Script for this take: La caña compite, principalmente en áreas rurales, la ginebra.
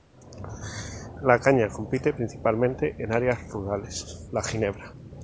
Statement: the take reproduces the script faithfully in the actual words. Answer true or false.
true